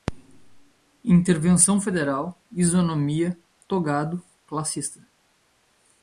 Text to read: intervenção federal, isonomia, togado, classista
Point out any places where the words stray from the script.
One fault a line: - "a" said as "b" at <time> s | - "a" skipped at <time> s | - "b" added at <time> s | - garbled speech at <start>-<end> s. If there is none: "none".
none